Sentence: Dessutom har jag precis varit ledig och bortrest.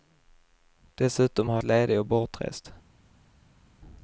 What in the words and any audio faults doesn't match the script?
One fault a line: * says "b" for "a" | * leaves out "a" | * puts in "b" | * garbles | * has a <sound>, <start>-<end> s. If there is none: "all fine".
* leaves out "jag precis varit"